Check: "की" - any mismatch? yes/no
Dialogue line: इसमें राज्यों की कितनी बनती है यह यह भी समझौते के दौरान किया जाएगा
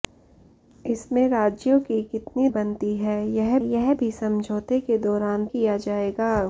no